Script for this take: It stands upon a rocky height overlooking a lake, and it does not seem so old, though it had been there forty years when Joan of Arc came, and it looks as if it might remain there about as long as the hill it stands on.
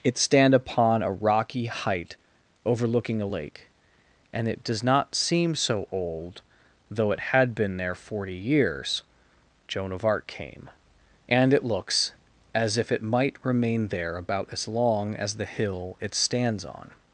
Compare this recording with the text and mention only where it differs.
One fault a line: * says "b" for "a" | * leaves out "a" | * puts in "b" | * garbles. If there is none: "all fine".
* says "stand" for "stands"
* leaves out "when"